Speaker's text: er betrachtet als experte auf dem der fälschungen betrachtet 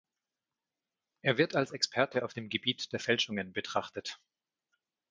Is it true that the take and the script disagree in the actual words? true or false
true